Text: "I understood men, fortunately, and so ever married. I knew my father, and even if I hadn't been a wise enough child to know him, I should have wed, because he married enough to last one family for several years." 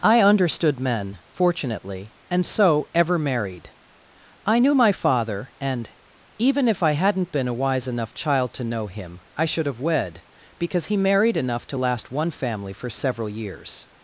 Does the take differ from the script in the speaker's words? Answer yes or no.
no